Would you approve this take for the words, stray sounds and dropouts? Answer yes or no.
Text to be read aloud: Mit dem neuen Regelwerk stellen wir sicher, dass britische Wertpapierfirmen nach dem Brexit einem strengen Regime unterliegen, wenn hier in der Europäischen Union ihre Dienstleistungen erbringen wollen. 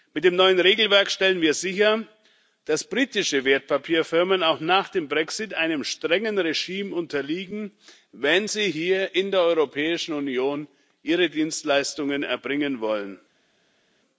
no